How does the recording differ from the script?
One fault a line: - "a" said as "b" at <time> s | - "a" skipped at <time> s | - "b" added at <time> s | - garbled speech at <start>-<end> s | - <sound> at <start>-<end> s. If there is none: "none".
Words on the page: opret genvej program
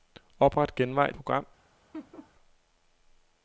- laugh at 1.9-2.3 s